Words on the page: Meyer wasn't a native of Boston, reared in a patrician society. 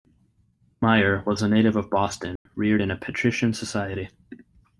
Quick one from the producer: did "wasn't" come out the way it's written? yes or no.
no